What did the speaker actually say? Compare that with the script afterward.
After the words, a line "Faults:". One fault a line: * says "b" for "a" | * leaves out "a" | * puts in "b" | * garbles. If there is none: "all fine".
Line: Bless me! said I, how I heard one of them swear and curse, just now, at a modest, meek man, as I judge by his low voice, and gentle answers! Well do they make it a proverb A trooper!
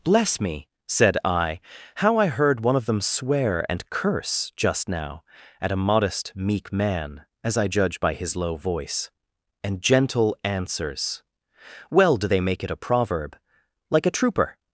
Bless me! said I, how I heard one of them swear and curse, just now, at a modest, meek man, as I judge by his low voice, and gentle answers! Well do they make it a proverb Like a trooper!
Faults:
* puts in "Like"